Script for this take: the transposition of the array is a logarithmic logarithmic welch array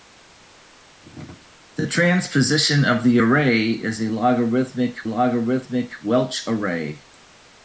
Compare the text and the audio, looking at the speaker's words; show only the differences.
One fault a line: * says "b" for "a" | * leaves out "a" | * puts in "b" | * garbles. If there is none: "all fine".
all fine